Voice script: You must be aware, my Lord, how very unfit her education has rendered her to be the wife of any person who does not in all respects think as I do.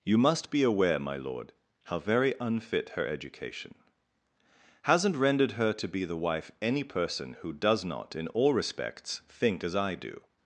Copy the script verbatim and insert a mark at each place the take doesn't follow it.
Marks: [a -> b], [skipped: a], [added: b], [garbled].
You must be aware, my Lord, how very unfit her education [has -> hasn't] rendered her to be the wife [skipped: of] any person who does not in all respects think as I do.